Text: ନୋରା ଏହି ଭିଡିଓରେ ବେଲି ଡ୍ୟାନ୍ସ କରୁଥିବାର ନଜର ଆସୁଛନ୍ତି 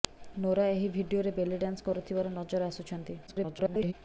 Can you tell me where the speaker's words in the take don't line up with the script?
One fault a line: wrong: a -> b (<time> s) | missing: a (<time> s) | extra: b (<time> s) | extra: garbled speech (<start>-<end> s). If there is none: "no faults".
extra: garbled speech (3.3-3.9 s)